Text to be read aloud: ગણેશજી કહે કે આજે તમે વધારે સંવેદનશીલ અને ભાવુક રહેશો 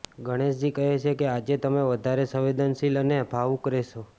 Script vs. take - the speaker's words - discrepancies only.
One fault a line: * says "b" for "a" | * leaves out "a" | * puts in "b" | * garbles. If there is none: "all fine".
* puts in "છે"